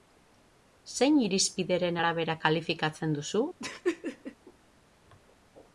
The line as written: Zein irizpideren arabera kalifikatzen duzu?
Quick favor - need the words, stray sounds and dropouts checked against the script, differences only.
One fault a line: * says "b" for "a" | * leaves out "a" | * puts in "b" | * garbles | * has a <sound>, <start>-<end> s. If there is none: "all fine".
* has a laugh, 3.6-4.4 s